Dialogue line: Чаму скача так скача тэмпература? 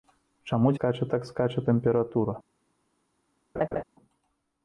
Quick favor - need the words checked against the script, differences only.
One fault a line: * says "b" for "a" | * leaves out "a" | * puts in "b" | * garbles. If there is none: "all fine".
all fine